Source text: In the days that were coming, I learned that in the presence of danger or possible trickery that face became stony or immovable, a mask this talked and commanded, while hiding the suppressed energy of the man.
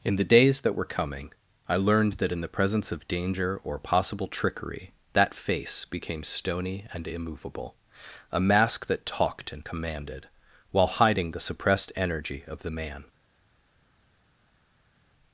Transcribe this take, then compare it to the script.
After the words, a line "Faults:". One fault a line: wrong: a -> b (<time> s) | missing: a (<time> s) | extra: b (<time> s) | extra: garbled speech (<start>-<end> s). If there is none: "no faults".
In the days that were coming, I learned that in the presence of danger or possible trickery that face became stony and immovable, a mask that talked and commanded, while hiding the suppressed energy of the man.
Faults:
wrong: or -> and (6.9 s)
wrong: this -> that (8.9 s)